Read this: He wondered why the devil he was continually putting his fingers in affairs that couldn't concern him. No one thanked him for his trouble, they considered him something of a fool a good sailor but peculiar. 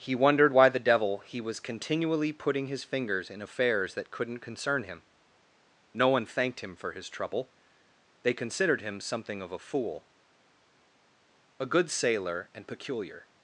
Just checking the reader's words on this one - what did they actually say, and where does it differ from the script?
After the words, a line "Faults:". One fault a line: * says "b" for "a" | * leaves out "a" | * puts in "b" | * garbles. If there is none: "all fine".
He wondered why the devil he was continually putting his fingers in affairs that couldn't concern him. No one thanked him for his trouble, they considered him something of a fool a good sailor and peculiar.
Faults:
* says "and" for "but"